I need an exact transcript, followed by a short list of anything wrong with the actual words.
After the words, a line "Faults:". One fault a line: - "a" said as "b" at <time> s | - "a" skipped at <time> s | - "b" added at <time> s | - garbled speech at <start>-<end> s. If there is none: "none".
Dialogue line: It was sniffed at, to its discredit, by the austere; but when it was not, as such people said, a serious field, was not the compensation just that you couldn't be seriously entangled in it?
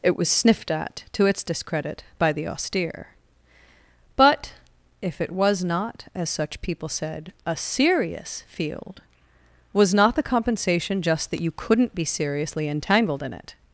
It was sniffed at, to its discredit, by the austere; but if it was not, as such people said, a serious field, was not the compensation just that you couldn't be seriously entangled in it?
Faults:
- "when" said as "if" at 5.0 s